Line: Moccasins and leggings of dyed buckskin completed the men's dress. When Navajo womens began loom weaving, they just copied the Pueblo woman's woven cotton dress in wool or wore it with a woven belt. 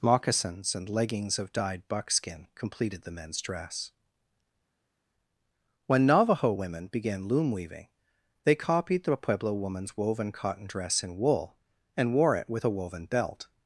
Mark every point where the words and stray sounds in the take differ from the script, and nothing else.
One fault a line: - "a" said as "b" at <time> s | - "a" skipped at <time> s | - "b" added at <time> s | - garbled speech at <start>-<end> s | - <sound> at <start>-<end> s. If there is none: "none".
- "womens" said as "women" at 6.5 s
- "just" skipped at 8.5 s
- "or" said as "and" at 11.9 s